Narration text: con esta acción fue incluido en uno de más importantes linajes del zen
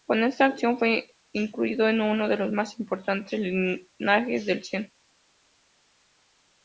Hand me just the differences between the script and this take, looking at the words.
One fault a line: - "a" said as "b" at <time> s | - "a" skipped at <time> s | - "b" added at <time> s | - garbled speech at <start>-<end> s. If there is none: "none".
- "los" added at 2.4 s